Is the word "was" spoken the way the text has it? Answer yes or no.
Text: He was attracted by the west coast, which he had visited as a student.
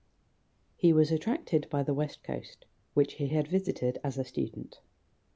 yes